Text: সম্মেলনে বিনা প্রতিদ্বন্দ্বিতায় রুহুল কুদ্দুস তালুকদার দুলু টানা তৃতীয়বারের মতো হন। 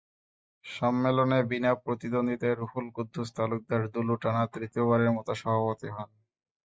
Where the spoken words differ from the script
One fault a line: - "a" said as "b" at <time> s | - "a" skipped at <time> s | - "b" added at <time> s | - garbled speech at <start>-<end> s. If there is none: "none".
- "সভাপতি" added at 5.4 s